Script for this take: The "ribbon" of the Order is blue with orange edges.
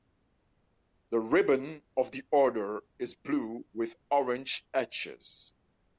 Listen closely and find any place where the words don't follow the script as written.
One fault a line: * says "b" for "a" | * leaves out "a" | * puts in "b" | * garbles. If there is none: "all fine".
all fine